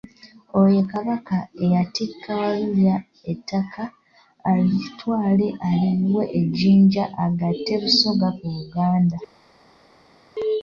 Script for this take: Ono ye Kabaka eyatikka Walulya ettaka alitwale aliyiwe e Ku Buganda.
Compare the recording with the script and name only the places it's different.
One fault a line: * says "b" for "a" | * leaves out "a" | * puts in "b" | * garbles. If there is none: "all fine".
* says "Oyo" for "Ono"
* puts in "Jjinja agatte Busoga"